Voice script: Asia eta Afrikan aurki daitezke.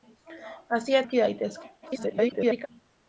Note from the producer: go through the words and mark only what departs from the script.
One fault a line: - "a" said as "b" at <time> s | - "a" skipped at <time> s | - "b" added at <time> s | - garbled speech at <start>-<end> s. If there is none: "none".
- "eta Afrikan" skipped at 1.0 s
- garbled speech at 1.8-2.7 s